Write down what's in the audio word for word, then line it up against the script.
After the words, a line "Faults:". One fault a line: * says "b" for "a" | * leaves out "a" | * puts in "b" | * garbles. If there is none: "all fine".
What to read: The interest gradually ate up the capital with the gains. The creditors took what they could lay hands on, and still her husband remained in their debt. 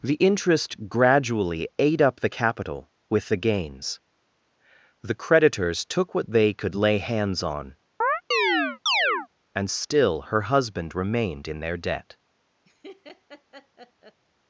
The interest gradually ate up the capital with the gains. The creditors took what they could lay hands on, and still her husband remained in their debt.
Faults:
all fine